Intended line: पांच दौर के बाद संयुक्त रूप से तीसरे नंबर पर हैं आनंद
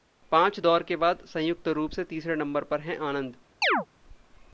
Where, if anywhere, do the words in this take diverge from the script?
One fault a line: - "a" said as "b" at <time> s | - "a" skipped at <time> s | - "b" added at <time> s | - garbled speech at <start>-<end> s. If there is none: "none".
none